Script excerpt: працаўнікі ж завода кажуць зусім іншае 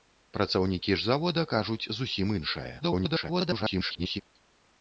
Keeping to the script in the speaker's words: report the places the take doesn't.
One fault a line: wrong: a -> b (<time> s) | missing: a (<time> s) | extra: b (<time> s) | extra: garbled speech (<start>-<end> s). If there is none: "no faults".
extra: garbled speech (2.8-4.2 s)